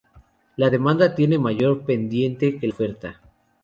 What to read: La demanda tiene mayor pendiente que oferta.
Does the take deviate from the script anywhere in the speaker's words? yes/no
no